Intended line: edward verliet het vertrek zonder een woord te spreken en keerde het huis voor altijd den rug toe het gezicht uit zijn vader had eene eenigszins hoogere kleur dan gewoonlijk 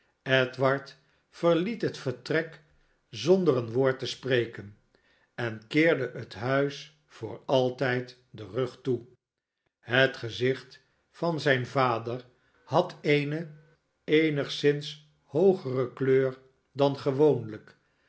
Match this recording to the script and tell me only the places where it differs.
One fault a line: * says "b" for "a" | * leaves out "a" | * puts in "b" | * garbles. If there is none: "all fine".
* says "van" for "uit"